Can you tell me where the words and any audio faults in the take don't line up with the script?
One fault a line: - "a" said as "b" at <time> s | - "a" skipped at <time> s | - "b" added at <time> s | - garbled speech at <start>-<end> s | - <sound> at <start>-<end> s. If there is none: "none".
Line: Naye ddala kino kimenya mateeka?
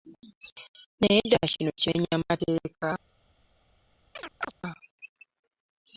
- chirp at 4.2-4.5 s